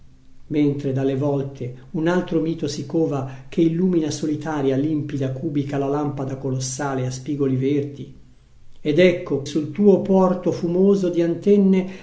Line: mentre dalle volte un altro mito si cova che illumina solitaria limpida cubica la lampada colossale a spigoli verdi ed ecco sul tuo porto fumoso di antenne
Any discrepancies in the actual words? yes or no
no